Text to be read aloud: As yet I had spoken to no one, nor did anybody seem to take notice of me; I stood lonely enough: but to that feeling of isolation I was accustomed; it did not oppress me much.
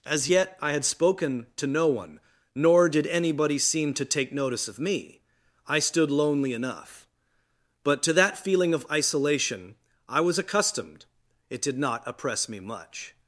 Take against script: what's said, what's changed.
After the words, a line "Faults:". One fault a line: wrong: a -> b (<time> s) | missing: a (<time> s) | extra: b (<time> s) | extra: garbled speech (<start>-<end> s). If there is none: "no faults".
As yet I had spoken to no one, nor did anybody seem to take notice of me; I stood lonely enough: but to that feeling of isolation I was accustomed; it did not oppress me much.
Faults:
no faults